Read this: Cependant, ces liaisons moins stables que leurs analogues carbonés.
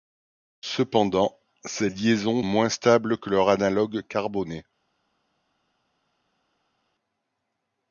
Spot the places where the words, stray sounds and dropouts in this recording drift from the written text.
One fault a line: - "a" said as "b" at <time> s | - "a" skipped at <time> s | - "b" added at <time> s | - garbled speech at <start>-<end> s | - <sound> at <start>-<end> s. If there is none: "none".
none